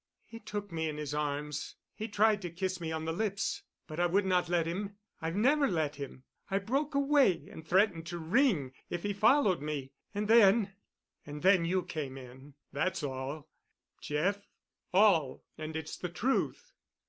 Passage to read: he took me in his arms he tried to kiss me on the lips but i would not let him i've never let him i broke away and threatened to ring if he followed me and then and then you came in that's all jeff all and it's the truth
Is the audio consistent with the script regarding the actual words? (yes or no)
yes